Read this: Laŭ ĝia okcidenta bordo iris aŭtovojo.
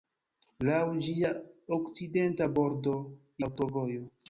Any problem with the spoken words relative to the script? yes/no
yes